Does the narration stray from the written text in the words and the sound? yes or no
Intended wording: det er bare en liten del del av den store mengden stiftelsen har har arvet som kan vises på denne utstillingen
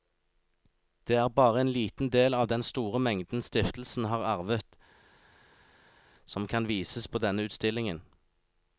yes